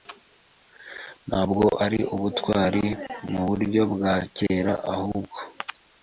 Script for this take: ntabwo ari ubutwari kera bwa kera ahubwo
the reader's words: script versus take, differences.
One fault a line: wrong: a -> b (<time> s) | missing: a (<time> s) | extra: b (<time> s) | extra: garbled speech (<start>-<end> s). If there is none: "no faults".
wrong: kera -> muburyo (3.3 s)